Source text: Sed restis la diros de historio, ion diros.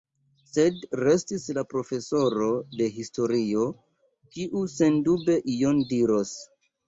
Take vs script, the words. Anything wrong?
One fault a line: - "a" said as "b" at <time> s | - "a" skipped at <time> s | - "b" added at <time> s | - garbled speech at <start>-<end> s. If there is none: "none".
- "diros" said as "profesoro" at 1.7 s
- "kiu sendube" added at 4.4 s